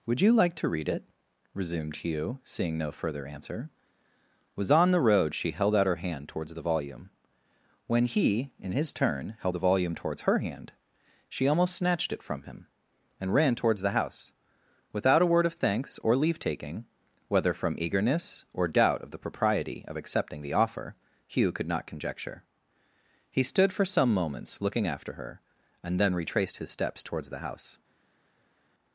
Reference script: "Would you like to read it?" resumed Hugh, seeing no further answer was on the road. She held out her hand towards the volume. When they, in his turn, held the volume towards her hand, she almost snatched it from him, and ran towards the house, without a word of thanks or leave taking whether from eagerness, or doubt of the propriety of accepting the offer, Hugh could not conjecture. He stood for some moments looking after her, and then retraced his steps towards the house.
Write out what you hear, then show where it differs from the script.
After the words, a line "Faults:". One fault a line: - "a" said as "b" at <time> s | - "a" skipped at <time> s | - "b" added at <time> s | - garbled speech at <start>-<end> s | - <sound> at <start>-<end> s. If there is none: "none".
"Would you like to read it?" resumed Hugh, seeing no further answer was on the road. She held out her hand towards the volume. When he, in his turn, held the volume towards her hand, she almost snatched it from him, and ran towards the house, without a word of thanks or leave taking whether from eagerness, or doubt of the propriety of accepting the offer, Hugh could not conjecture. He stood for some moments looking after her, and then retraced his steps towards the house.
Faults:
- "they" said as "he" at 8.1 s